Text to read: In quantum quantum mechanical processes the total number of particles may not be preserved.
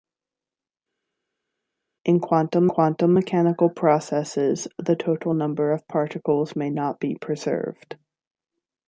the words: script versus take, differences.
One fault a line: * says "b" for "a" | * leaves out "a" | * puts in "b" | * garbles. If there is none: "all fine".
all fine